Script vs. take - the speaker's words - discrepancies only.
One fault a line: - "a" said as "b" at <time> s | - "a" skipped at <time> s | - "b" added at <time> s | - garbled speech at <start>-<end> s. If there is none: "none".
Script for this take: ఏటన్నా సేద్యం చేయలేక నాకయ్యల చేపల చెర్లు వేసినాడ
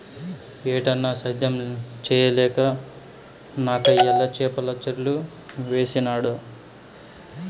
none